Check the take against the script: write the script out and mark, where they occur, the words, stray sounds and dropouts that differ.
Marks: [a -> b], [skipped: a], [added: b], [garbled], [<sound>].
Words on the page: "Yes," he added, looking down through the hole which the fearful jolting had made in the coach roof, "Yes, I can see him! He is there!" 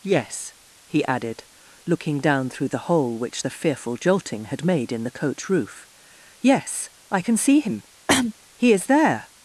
"Yes," he added, looking down through the hole which the fearful jolting had made in the coach roof, "Yes, I can see him! [cough] He is there!"